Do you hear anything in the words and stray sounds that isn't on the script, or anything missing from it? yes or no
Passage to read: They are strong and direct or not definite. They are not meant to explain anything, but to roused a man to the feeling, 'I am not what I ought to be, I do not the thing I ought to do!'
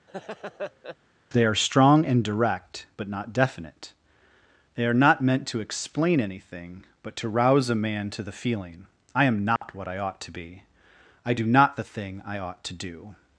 yes